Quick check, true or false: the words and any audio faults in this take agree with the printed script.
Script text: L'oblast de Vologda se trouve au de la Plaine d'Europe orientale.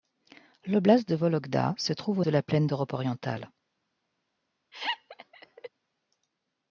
false